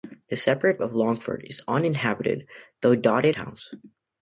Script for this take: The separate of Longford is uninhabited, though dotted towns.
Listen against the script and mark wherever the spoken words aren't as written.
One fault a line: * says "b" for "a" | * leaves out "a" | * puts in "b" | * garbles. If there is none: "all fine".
all fine